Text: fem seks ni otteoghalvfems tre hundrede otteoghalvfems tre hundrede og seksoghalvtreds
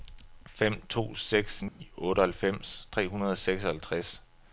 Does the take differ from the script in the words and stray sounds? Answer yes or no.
yes